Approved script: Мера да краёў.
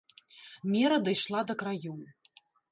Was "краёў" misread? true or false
false